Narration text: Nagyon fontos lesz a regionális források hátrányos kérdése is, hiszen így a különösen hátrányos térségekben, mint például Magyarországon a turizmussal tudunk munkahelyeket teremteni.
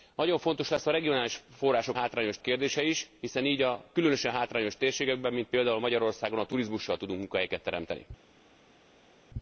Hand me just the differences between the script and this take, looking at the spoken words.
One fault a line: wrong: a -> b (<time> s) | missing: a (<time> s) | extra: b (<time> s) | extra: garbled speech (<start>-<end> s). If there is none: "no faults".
no faults